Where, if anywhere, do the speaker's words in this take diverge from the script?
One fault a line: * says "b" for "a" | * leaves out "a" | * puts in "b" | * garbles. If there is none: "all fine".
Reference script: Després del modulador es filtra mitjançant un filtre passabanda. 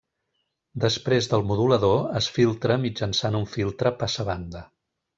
all fine